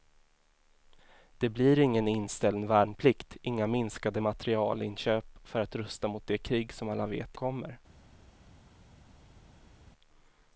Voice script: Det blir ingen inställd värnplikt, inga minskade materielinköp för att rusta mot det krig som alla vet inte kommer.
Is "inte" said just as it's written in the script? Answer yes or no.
no